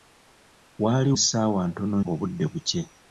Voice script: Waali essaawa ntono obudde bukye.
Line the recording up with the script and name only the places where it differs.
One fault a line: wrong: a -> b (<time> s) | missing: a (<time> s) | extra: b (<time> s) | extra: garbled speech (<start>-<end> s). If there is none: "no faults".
no faults